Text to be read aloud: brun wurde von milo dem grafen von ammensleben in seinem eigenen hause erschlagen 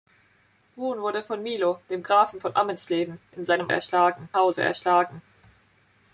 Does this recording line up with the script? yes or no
no